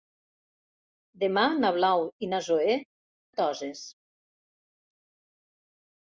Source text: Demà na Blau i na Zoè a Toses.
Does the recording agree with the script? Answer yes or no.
yes